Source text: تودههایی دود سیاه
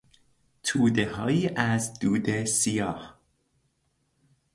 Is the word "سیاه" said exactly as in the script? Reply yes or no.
yes